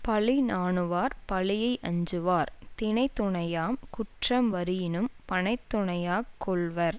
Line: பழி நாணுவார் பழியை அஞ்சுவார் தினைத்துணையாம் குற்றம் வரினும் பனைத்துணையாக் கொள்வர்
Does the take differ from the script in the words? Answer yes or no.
no